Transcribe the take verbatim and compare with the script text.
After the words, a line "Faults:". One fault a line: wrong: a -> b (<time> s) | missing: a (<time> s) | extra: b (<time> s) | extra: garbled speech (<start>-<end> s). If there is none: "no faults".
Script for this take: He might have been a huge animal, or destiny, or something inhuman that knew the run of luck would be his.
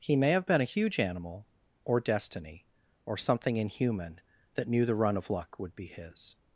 He may have been a huge animal, or destiny, or something inhuman that knew the run of luck would be his.
Faults:
wrong: might -> may (0.1 s)